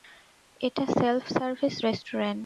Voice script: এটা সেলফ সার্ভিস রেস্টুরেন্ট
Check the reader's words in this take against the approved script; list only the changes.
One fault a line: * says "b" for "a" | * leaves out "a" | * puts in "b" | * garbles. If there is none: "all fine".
all fine